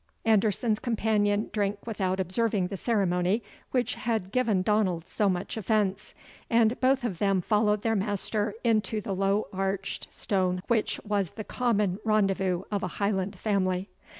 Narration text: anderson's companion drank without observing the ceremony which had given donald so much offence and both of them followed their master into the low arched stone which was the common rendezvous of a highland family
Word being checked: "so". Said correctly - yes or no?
yes